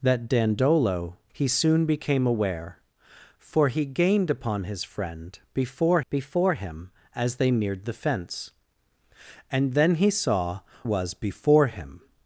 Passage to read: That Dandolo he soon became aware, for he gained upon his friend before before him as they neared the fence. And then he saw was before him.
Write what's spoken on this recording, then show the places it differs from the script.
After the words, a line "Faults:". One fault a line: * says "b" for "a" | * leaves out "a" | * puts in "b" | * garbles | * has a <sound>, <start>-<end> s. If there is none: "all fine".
That Dandolo he soon became aware, for he gained upon his friend before before him as they neared the fence. And then he saw was before him.
Faults:
all fine